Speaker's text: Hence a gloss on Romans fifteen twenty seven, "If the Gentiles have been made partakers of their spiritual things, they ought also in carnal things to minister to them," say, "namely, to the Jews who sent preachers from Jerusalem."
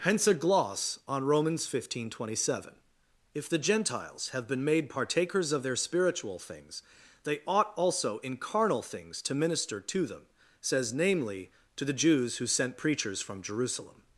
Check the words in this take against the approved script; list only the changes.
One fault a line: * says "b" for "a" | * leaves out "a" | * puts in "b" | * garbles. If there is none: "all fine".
* says "says" for "say"